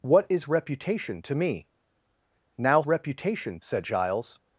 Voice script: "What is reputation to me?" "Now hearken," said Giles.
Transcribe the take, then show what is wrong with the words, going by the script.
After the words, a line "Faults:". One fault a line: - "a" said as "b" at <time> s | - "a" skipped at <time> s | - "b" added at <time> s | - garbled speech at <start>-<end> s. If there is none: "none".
"What is reputation to me?" "Now reputation," said Giles.
Faults:
- "hearken" said as "reputation" at 2.8 s